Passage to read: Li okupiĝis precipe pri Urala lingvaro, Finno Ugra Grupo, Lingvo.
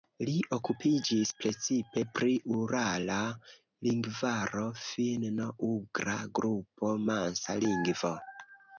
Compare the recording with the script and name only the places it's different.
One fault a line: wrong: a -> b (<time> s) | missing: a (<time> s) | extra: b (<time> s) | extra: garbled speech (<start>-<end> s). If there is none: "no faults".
extra: Mansa (7.1 s)